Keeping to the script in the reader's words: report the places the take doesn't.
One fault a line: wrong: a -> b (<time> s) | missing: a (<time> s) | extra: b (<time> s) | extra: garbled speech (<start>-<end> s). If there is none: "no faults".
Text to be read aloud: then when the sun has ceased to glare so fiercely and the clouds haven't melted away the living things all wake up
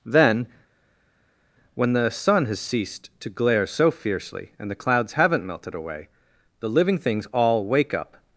no faults